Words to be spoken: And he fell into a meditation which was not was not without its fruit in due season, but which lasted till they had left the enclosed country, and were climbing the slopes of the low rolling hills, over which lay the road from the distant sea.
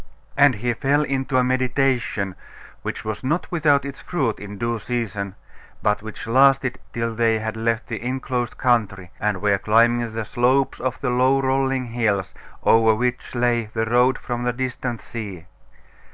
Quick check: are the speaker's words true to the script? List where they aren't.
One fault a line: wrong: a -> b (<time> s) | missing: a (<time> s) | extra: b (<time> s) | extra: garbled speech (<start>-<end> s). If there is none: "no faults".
missing: was not (3.5 s)